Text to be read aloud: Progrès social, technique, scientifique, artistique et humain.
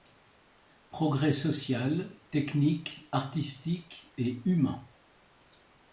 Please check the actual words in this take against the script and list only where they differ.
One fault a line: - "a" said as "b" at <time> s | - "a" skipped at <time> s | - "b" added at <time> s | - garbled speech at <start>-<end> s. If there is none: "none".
- "scientifique" skipped at 3.1 s